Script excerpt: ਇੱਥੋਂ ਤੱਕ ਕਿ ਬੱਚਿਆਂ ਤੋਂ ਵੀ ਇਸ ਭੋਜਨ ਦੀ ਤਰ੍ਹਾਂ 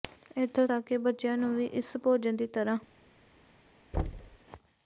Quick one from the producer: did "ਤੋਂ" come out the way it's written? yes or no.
no